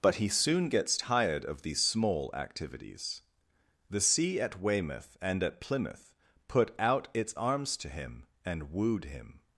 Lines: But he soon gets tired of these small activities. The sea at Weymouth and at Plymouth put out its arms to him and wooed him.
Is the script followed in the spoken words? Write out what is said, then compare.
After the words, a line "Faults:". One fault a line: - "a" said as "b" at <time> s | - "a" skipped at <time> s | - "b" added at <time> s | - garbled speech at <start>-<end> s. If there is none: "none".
But he soon gets tired of these small activities. The sea at Weymouth and at Plymouth put out its arms to him and wooed him.
Faults:
none